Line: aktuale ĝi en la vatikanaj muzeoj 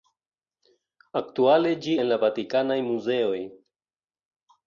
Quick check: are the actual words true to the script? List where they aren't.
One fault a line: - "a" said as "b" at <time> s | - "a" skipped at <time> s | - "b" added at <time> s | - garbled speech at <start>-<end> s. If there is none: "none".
none